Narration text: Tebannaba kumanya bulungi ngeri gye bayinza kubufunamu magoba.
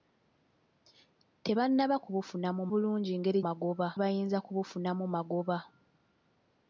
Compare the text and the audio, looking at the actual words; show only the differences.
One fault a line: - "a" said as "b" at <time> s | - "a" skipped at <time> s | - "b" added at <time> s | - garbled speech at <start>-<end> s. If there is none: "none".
- "kumanya" said as "kubufunamu" at 2.0 s
- "gye" said as "magoba" at 3.4 s